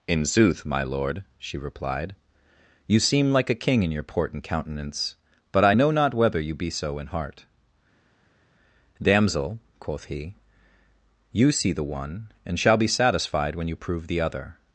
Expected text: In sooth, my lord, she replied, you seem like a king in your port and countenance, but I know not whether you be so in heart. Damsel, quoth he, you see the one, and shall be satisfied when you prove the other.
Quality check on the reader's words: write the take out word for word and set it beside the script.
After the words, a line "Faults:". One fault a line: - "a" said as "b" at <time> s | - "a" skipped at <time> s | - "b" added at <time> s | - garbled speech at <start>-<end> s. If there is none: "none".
In sooth, my lord, she replied, you seem like a king in your port and countenance, but I know not whether you be so in heart. Damsel, quoth he, you see the one, and shall be satisfied when you prove the other.
Faults:
none